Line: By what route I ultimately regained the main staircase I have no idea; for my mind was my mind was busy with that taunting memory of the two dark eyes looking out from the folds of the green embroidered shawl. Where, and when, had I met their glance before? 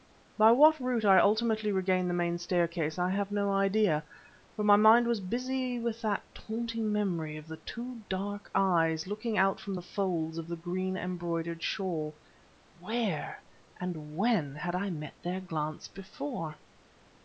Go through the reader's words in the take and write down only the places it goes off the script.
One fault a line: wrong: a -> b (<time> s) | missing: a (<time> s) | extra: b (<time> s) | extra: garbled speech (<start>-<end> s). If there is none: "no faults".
missing: my mind was (5.2 s)